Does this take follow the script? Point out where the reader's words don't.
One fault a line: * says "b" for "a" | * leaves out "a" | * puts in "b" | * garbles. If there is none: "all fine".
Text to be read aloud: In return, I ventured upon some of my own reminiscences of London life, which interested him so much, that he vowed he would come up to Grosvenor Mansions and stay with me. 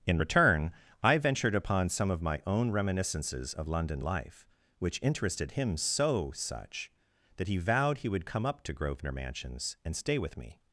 * says "such" for "much"